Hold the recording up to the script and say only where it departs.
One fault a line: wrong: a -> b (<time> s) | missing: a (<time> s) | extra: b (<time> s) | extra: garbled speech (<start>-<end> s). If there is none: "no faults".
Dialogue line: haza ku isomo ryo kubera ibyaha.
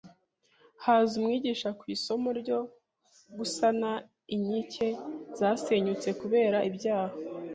extra: umwigisha (1.2 s)
extra: gusana inkike zasenyutse (3.4 s)